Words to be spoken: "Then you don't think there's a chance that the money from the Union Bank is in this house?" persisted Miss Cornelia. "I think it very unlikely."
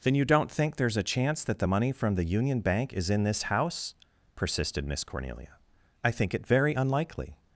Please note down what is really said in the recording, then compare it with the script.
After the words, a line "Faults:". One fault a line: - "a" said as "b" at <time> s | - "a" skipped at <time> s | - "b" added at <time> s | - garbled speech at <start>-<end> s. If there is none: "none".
"Then you don't think there's a chance that the money from the Union Bank is in this house?" persisted Miss Cornelia. "I think it very unlikely."
Faults:
none